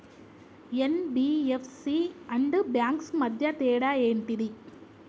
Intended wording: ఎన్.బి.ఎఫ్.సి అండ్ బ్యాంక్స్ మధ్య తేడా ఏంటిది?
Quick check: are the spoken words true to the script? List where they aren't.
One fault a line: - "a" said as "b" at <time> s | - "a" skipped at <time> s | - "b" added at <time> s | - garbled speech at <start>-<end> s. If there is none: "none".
none